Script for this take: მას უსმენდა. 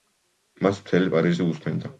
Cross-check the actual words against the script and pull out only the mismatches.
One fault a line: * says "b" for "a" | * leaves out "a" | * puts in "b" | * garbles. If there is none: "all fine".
* puts in "მთელი პარიზი"